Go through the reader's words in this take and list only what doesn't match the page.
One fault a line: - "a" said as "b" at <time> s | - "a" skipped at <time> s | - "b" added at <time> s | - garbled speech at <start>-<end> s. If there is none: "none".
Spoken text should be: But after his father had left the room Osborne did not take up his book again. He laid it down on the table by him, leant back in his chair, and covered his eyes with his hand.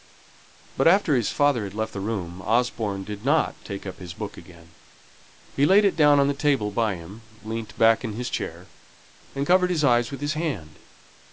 none